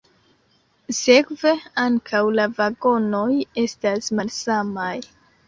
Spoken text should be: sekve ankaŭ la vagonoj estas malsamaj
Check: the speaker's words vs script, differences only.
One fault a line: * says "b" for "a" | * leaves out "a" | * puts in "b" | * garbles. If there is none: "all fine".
all fine